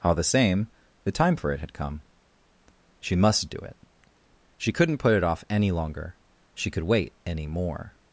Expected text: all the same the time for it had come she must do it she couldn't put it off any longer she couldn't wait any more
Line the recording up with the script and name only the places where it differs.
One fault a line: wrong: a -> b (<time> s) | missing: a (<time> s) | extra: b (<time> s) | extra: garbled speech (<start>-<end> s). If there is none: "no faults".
wrong: couldn't -> could (6.7 s)